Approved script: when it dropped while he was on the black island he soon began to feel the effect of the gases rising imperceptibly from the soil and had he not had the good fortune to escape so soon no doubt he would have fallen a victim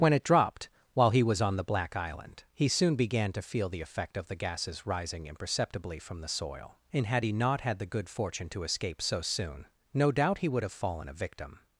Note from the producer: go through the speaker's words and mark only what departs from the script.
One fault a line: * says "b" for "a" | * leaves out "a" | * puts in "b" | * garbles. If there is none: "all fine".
all fine